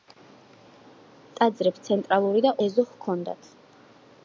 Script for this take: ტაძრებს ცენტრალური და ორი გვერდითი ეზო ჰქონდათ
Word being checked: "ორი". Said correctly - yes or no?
no